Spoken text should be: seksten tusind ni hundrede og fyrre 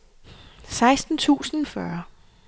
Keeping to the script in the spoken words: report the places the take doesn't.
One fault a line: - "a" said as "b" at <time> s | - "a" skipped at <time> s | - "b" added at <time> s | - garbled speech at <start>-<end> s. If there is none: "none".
- "ni hundrede og" skipped at 1.7 s